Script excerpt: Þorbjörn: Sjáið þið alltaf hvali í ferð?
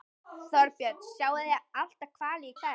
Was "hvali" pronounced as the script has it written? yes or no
yes